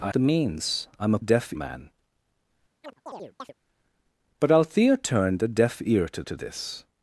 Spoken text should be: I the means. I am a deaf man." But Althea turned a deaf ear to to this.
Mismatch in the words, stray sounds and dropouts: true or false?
true